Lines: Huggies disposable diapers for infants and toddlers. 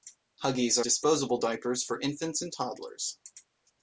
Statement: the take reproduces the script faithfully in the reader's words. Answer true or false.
true